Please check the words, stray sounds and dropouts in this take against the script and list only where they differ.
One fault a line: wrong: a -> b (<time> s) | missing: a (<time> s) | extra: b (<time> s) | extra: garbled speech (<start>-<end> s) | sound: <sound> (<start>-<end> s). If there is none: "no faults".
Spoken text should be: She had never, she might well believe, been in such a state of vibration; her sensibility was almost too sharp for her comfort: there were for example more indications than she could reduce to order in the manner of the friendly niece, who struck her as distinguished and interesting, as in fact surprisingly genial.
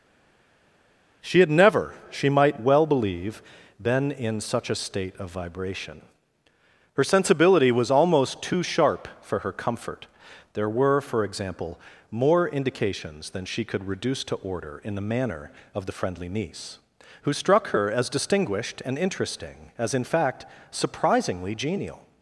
no faults